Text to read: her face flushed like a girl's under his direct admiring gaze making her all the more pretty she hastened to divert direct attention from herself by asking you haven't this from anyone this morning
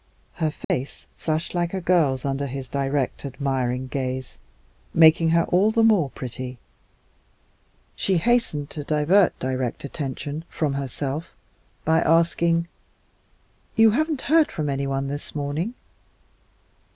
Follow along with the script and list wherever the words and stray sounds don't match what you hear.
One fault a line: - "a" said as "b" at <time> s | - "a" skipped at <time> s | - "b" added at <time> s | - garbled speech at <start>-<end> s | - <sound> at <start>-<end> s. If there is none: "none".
- dropout at 0.6-0.7 s
- "this" said as "heard" at 14.2 s